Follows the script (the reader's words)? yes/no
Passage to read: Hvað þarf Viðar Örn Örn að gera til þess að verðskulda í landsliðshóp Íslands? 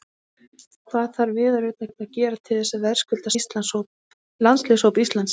yes